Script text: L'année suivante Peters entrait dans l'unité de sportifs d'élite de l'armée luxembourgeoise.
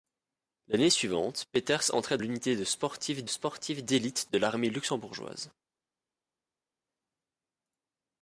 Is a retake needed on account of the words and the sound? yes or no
yes